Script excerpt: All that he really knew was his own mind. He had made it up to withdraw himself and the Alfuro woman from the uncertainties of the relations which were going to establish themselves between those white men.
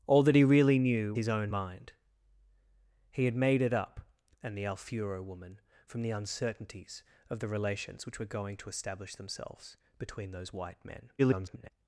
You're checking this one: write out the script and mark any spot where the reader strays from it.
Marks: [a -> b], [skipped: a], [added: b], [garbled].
All that he really knew [skipped: was] his own mind. He had made it up [skipped: to withdraw himself] and the Alfuro woman from the uncertainties of the relations which were going to establish themselves between those white men. [garbled]